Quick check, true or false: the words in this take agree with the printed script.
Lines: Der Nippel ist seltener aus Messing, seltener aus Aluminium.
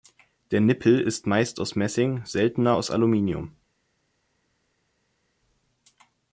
false